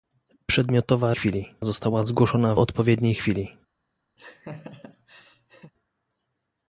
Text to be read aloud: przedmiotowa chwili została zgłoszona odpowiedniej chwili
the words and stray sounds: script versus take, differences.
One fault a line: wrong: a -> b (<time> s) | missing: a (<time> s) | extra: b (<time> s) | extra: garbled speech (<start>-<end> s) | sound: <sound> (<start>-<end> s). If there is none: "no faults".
sound: laugh (4.2-5.7 s)